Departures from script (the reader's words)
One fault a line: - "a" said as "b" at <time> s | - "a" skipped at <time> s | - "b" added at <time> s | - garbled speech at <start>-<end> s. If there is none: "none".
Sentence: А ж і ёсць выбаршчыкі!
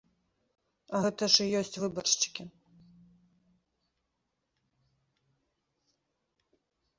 - "гэта" added at 1.0 s